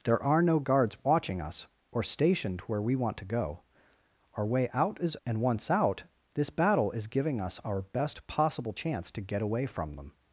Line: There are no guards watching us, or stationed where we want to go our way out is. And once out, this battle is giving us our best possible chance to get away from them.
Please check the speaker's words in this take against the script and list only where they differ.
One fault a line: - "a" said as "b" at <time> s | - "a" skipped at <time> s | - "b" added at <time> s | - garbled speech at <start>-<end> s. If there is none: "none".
none